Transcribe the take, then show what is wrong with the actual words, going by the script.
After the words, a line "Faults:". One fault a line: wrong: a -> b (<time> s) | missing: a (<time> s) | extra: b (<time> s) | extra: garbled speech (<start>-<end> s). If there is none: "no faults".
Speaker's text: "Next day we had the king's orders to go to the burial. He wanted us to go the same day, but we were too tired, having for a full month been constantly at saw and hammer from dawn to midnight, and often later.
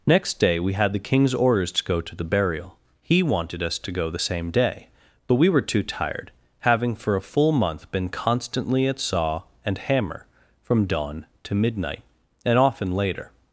"Next day we had the king's orders to go to the burial. He wanted us to go the same day, but we were too tired, having for a full month been constantly at saw and hammer from dawn to midnight, and often later.
Faults:
no faults